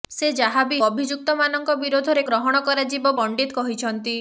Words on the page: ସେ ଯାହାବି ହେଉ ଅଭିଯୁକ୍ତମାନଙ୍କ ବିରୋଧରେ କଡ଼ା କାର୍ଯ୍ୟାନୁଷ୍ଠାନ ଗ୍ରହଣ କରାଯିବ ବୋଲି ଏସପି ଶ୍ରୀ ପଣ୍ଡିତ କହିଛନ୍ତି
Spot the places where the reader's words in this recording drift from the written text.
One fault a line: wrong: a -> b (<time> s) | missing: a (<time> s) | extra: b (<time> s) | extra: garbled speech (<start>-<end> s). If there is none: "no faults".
missing: ହେଉ (0.8 s)
missing: କଡ଼ା କାର୍ଯ୍ୟାନୁଷ୍ଠାନ (2.2 s)
missing: ବୋଲି ଏସପି ଶ୍ରୀ (3.1 s)